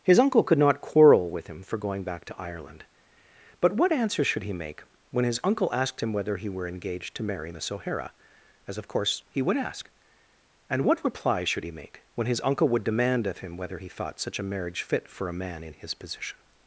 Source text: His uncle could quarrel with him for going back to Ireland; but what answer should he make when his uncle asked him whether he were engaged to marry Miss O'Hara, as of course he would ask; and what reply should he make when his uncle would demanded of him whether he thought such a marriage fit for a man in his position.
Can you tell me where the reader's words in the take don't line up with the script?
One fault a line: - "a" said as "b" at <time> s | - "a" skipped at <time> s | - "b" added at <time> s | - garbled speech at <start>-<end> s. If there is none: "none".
- "not" added at 0.6 s
- "demanded" said as "demand" at 12.8 s